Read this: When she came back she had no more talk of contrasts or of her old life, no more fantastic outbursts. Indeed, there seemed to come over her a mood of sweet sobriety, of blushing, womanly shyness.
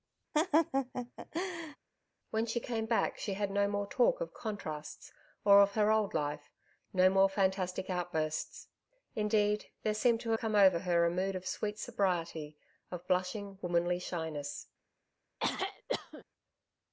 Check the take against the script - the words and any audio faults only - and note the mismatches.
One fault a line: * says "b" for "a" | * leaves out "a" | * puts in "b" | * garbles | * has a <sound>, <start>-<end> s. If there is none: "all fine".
* has a laugh, 0.3-1.8 s
* has a throat clearing, 15.4-16.2 s